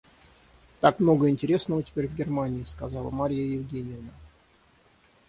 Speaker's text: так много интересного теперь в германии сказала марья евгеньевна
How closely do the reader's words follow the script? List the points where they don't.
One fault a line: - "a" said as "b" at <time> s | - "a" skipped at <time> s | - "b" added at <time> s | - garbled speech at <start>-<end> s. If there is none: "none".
none